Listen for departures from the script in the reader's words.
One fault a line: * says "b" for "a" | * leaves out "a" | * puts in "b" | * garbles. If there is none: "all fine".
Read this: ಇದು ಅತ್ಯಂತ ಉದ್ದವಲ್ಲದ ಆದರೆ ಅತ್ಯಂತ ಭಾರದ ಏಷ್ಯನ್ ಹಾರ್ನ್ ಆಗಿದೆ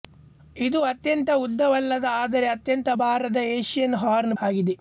all fine